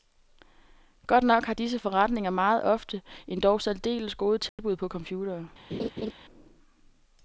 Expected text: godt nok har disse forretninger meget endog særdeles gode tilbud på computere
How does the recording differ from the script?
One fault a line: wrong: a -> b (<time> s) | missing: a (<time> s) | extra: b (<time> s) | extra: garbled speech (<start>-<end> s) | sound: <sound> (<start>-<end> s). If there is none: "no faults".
extra: ofte (2.6 s)
sound: dropout (4.5-4.6 s)
sound: laugh (5.7-6.1 s)